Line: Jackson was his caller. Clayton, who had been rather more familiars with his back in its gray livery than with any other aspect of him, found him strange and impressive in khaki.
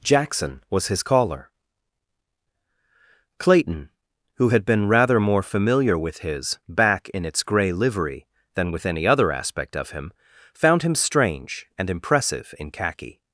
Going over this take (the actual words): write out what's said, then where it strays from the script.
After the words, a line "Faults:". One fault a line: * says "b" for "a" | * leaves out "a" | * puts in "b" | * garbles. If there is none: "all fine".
Jackson was his caller. Clayton, who had been rather more familiar with his back in its gray livery than with any other aspect of him, found him strange and impressive in khaki.
Faults:
* says "familiar" for "familiars"